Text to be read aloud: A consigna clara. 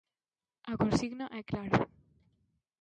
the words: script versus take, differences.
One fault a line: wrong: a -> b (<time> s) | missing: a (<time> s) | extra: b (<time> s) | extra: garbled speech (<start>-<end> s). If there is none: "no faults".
extra: é (1.3 s)